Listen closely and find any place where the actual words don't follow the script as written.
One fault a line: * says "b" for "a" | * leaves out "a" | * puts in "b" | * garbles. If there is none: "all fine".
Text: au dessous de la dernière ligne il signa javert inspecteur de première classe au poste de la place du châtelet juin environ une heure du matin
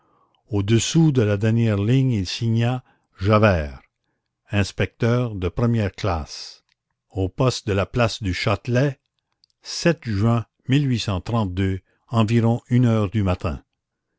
all fine